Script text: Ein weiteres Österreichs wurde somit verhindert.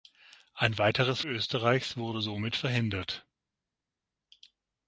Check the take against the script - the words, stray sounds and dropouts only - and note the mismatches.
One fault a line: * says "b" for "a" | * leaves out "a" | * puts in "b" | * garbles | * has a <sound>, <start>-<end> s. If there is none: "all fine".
all fine